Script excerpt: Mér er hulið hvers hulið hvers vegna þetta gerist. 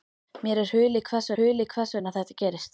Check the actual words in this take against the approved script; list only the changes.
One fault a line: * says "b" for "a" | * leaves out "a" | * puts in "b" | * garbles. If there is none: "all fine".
all fine